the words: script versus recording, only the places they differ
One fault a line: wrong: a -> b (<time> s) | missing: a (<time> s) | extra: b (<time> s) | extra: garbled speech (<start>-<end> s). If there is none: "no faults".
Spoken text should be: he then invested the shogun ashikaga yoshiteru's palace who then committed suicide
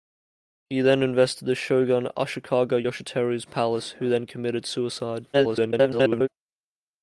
extra: garbled speech (5.3-6.3 s)